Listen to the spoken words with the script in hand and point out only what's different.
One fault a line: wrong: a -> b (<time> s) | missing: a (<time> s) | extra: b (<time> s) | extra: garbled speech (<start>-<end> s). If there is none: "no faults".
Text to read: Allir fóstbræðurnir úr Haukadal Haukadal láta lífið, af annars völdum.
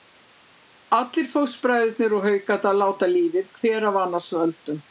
missing: Haukadal (2.8 s)
extra: hver (3.6 s)